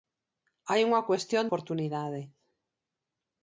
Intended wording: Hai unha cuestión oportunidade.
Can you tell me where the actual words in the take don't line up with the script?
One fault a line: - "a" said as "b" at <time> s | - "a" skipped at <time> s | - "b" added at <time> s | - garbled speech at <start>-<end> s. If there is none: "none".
none